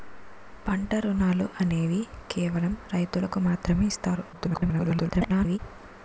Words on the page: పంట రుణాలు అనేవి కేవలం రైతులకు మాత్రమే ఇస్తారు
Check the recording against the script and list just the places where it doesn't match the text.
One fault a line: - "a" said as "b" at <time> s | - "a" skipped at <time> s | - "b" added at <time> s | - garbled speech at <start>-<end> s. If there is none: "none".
- garbled speech at 4.3-5.6 s